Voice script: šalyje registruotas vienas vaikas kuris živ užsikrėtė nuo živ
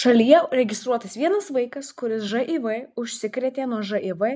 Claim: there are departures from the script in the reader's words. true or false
false